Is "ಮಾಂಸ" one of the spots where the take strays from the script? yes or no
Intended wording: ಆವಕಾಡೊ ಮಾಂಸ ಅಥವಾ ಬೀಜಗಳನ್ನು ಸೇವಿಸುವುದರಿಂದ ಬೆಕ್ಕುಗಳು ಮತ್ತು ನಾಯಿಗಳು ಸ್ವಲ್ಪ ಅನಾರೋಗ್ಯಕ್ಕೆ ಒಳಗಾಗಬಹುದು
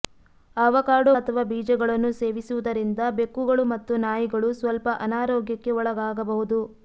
yes